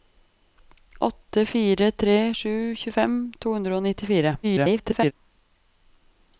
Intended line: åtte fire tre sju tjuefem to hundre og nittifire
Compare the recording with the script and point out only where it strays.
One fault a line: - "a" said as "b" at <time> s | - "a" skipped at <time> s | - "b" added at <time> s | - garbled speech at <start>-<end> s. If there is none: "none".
- garbled speech at 4.4-5.1 s